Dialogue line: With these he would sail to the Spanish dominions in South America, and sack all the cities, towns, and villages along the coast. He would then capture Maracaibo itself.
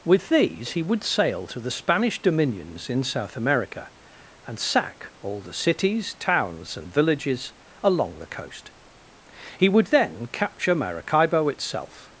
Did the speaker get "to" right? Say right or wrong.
right